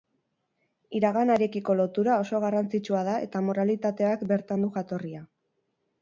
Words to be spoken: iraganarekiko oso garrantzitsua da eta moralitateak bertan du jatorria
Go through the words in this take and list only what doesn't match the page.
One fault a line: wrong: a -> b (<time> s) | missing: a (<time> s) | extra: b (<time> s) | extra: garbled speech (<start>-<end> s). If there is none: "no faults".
extra: lotura (1.8 s)